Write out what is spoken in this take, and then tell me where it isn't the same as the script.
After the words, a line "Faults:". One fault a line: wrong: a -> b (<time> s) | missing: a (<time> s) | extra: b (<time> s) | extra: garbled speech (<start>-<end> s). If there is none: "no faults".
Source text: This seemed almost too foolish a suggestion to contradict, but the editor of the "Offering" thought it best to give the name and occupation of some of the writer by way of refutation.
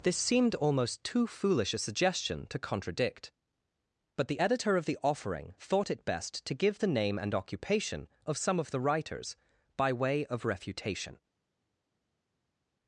This seemed almost too foolish a suggestion to contradict, but the editor of the "Offering" thought it best to give the name and occupation of some of the writers by way of refutation.
Faults:
wrong: writer -> writers (8.8 s)